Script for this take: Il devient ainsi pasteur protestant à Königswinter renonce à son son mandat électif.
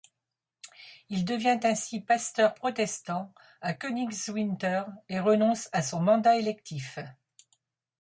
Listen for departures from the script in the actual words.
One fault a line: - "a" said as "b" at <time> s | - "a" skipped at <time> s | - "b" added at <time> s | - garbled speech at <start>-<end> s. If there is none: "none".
- "et" added at 5.1 s
- "son" skipped at 6.0 s